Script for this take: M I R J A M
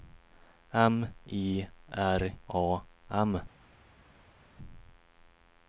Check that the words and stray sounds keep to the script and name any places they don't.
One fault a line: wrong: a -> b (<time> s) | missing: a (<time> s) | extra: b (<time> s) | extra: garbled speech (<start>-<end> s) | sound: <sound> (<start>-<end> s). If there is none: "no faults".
missing: J (2.3 s)